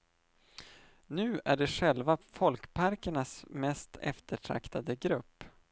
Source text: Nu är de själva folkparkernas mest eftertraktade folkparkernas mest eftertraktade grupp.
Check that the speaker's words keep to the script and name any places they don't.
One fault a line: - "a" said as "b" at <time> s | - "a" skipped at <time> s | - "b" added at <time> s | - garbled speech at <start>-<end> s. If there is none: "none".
- "folkparkernas mest eftertraktade" skipped at 4.9 s